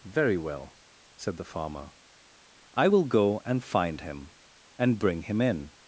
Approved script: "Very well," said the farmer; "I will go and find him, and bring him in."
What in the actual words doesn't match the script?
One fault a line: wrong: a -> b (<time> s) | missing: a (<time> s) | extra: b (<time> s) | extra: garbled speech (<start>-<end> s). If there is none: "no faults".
no faults